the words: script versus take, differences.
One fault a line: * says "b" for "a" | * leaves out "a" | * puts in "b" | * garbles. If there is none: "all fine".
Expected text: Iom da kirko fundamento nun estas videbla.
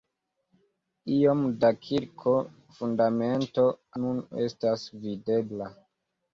all fine